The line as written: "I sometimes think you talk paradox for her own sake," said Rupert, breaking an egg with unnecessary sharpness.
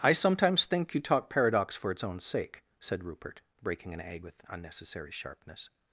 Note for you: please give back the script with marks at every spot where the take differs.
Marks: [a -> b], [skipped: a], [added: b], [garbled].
"I sometimes think you talk paradox for [her -> its] own sake," said Rupert, breaking an egg with unnecessary sharpness.